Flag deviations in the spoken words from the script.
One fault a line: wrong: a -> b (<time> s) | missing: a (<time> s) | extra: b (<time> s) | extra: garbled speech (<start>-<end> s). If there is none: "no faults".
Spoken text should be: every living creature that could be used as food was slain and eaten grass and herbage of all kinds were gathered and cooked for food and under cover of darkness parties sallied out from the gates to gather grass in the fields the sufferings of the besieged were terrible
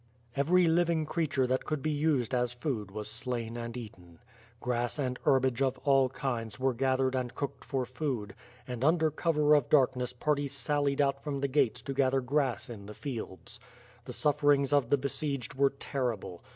no faults